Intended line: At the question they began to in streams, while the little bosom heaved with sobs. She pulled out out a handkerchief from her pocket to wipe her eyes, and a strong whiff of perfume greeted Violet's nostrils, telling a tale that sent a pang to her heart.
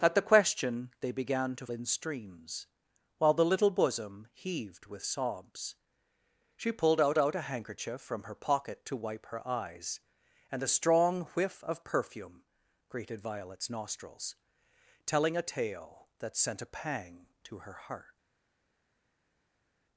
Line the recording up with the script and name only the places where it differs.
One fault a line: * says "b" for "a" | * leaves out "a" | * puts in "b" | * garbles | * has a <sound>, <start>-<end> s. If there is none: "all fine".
all fine